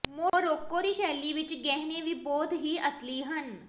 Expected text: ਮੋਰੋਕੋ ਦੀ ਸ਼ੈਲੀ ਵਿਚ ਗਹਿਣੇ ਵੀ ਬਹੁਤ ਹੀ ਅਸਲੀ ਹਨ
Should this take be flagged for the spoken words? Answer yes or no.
no